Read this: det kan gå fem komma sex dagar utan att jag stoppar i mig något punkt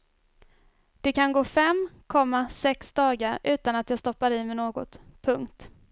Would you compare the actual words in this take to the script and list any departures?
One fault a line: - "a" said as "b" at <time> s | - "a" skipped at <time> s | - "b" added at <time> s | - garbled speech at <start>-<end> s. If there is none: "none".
none